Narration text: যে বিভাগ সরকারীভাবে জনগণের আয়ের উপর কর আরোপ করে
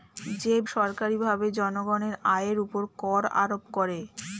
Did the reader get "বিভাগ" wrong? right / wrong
wrong